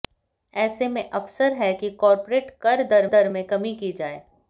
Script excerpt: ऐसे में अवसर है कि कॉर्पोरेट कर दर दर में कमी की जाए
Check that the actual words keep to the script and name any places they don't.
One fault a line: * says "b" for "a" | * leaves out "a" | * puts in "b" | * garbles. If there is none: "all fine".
all fine